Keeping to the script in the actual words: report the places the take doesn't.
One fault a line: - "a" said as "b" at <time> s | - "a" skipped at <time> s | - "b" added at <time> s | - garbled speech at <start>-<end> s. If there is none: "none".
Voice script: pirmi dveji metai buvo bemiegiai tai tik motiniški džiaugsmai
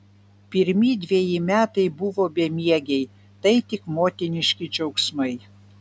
none